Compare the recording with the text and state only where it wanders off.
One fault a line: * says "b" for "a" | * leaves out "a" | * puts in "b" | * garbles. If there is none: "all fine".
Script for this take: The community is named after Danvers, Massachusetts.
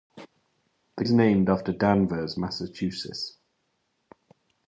* leaves out "community"